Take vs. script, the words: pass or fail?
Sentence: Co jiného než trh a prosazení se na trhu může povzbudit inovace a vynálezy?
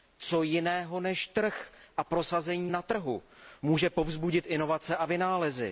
fail